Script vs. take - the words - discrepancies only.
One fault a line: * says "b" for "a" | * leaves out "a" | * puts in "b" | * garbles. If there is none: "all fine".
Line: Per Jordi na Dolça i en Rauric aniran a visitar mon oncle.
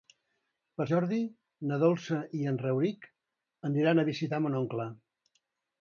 all fine